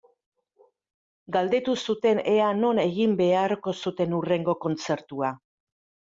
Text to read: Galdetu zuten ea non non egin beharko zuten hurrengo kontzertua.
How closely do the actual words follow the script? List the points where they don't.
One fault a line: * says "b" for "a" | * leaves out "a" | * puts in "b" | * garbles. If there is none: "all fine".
* leaves out "non"